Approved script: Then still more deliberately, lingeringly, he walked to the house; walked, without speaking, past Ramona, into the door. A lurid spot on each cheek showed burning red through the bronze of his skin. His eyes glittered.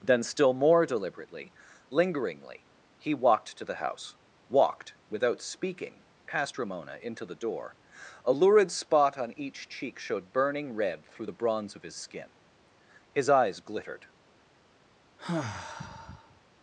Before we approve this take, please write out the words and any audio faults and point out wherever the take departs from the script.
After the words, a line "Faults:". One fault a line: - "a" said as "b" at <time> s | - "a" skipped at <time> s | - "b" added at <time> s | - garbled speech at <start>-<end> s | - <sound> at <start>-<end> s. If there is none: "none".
Then still more deliberately, lingeringly, he walked to the house; walked, without speaking, past Ramona, into the door. A lurid spot on each cheek showed burning red through the bronze of his skin. His eyes glittered.
Faults:
- sigh at 15.2-16.4 s